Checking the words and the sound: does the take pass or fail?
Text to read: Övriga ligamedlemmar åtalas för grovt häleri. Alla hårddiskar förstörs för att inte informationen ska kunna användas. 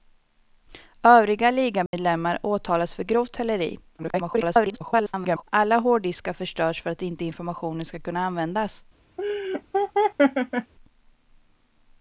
fail